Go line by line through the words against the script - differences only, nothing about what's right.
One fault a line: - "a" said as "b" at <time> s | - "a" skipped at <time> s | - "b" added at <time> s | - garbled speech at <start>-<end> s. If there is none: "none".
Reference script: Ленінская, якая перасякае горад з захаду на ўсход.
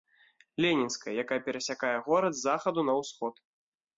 none